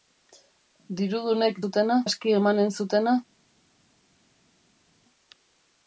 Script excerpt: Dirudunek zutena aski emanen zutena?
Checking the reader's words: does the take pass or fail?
pass